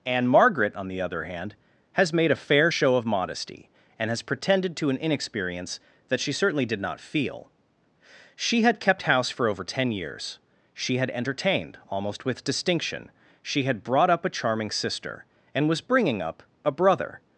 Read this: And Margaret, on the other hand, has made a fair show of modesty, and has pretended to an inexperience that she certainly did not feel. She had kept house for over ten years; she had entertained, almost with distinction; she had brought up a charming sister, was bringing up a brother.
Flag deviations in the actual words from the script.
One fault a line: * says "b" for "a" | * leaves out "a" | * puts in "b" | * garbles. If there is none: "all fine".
* puts in "and"